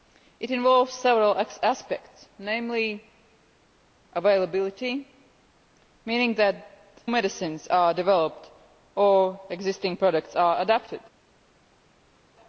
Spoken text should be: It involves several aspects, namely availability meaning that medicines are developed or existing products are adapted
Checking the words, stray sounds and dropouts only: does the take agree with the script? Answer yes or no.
yes